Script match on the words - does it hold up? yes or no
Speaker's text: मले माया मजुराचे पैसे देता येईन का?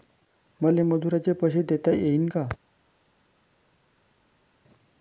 no